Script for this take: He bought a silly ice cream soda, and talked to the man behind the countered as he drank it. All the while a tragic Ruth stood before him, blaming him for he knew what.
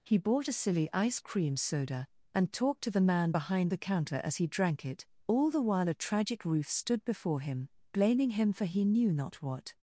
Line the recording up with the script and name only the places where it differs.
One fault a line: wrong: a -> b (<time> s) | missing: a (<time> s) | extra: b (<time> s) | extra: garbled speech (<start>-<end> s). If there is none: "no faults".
wrong: countered -> counter (3.8 s)
extra: not (9.1 s)